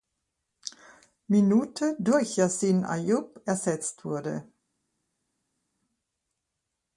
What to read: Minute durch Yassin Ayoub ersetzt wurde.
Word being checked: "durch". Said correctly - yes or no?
yes